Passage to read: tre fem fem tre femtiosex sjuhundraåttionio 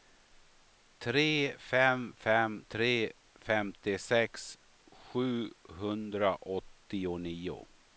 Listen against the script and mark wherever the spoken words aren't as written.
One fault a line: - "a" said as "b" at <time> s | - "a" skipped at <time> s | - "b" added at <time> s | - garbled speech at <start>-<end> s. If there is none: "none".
none